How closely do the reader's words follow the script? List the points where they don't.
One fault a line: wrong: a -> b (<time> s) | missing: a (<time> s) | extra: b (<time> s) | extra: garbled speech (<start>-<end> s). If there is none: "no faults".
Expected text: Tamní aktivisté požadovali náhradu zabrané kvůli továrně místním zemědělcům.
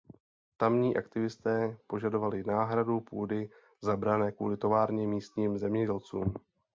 extra: půdy (3.0 s)